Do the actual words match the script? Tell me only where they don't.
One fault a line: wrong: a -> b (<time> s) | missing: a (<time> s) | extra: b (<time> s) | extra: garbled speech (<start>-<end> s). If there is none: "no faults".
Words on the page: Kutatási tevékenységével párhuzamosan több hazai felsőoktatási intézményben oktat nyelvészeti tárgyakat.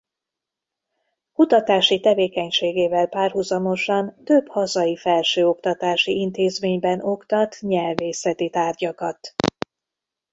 no faults